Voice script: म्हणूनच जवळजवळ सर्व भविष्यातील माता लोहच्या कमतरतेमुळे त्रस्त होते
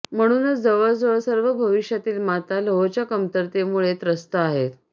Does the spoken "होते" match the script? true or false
false